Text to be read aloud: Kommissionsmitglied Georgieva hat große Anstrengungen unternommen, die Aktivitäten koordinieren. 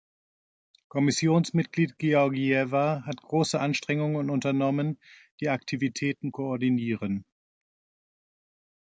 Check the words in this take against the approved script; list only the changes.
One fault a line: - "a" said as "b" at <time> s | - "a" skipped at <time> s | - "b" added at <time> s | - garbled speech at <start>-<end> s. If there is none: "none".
none